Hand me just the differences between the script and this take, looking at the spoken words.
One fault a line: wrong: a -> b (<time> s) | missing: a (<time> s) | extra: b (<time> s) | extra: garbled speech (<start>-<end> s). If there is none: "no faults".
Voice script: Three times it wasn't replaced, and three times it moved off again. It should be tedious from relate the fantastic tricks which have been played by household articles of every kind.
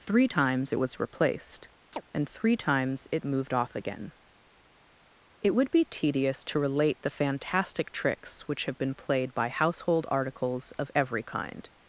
wrong: wasn't -> was (0.8 s)
wrong: should -> would (5.6 s)
wrong: from -> to (6.4 s)